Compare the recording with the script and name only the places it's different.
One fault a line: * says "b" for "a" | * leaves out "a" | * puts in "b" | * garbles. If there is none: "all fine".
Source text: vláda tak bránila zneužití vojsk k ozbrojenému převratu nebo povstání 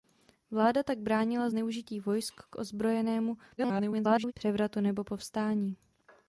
* garbles